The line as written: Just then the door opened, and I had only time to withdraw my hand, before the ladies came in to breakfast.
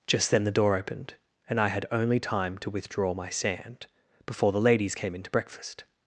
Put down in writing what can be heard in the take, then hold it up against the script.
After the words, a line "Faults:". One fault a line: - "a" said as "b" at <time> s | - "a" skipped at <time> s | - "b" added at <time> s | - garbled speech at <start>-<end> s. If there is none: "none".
Just then the door opened, and I had only time to withdraw my sand, before the ladies came in to breakfast.
Faults:
- "hand" said as "sand" at 3.3 s